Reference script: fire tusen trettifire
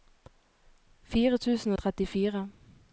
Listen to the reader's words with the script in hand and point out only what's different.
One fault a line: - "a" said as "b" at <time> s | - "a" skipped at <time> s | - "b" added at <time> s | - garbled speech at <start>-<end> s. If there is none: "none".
none